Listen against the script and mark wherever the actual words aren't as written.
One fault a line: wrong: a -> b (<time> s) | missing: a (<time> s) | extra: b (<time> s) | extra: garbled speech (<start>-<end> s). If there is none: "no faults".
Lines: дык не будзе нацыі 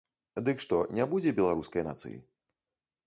extra: што (0.6 s)
extra: беларускай (1.4 s)